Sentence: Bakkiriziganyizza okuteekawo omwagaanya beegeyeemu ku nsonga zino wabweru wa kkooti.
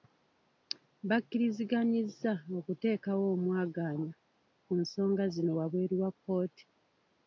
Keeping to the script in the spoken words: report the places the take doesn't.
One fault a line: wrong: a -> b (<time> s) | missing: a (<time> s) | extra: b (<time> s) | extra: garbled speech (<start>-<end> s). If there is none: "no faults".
missing: beegeyeemu (4.1 s)